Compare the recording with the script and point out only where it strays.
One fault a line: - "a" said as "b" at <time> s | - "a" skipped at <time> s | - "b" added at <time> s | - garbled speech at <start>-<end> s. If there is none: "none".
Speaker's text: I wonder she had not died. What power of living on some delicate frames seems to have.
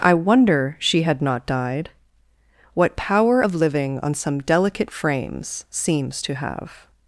none